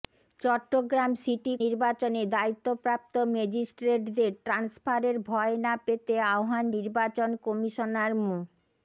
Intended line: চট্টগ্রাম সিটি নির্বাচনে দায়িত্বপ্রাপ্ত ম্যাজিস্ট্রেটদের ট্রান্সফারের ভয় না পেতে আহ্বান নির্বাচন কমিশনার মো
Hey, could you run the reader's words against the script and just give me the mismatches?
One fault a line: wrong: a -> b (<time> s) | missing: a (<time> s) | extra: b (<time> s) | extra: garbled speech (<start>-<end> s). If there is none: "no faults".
no faults